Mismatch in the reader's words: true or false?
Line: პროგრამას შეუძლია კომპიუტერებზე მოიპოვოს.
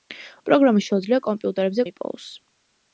false